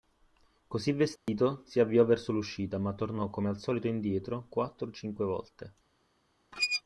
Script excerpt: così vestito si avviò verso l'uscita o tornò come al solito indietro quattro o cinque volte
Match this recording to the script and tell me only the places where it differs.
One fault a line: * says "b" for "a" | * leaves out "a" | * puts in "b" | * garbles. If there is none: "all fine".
* says "ma" for "o"